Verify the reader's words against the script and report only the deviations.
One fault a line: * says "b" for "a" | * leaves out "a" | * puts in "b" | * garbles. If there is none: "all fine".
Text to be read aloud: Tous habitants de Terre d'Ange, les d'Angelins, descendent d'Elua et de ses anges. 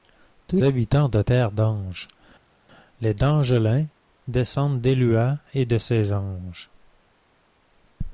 all fine